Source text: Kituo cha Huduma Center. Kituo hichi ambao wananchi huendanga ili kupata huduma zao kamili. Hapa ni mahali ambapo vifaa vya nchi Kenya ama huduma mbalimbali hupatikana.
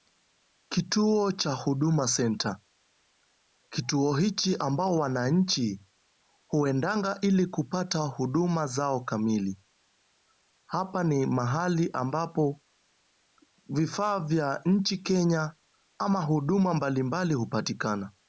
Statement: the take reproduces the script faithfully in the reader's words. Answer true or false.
true